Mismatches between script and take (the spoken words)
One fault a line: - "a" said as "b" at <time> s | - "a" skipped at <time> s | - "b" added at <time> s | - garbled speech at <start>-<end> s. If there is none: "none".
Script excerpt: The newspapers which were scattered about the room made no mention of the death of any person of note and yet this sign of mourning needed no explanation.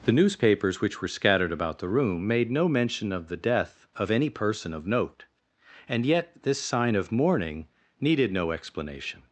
none